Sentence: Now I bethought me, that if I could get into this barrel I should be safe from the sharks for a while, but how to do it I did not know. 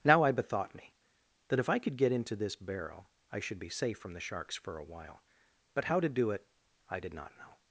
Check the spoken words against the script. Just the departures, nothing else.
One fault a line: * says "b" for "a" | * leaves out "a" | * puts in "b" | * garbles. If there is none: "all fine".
all fine